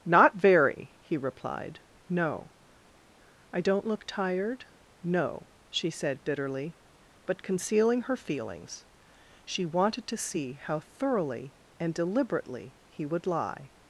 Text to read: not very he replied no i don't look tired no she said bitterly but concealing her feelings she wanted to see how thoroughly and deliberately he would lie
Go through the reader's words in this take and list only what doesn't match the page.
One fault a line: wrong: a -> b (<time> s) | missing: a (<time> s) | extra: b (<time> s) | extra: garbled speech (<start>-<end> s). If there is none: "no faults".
no faults